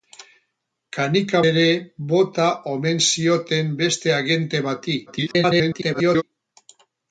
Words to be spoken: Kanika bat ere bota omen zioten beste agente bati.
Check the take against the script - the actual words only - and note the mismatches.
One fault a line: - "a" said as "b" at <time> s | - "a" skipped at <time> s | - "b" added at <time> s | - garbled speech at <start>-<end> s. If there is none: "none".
- "bat" skipped at 1.4 s
- garbled speech at 5.1-6.2 s